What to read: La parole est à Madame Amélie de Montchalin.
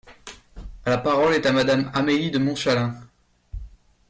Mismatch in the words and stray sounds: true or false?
false